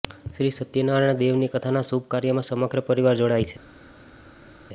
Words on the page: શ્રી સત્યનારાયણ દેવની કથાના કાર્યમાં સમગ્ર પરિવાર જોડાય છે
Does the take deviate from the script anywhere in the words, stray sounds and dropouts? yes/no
yes